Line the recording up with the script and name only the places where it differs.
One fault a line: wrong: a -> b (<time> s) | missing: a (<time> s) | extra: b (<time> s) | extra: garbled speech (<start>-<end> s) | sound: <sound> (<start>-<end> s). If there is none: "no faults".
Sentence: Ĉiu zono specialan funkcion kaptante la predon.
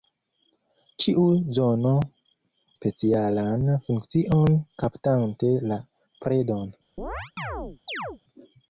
sound: chirp (7.0-8.2 s)